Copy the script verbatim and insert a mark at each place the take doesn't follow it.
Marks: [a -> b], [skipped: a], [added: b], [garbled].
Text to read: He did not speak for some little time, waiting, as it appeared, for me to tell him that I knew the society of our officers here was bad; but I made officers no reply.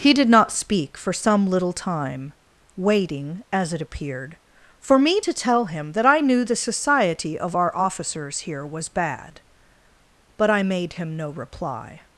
He did not speak for some little time, waiting, as it appeared, for me to tell him that I knew the society of our officers here was bad; but I made [officers -> him] no reply.